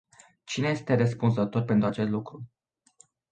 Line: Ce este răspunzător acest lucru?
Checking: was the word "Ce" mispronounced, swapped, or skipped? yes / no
yes